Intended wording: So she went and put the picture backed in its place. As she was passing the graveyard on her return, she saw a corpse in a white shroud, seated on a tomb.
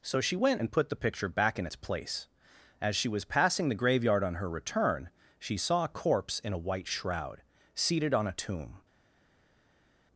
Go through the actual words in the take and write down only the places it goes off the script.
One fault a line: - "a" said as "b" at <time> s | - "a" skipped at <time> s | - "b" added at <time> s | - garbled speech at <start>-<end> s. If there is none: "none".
- "backed" said as "back" at 1.3 s